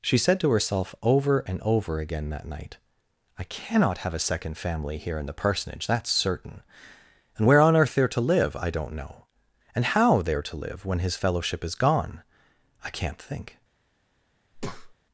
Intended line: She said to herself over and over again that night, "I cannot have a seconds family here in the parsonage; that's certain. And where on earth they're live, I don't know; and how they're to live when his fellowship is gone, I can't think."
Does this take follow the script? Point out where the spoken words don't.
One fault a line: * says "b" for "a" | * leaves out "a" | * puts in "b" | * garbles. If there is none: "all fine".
* says "second" for "seconds"
* puts in "to"